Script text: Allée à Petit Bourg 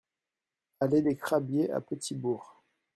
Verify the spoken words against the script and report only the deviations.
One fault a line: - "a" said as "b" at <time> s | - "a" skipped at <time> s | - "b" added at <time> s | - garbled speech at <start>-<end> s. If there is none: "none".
- "des Crabiers" added at 1.0 s